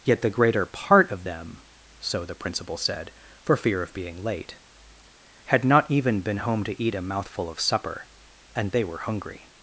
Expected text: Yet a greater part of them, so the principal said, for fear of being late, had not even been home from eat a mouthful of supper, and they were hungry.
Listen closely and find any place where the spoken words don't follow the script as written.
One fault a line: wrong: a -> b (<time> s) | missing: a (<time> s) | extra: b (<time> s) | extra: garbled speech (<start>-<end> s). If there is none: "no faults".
wrong: a -> the (0.2 s)
wrong: from -> to (6.6 s)